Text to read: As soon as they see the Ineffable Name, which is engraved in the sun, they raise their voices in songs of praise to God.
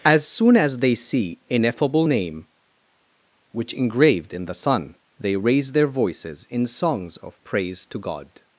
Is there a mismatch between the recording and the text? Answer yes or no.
yes